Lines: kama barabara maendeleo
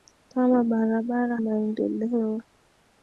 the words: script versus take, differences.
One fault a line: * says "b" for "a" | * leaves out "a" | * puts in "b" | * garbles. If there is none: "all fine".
all fine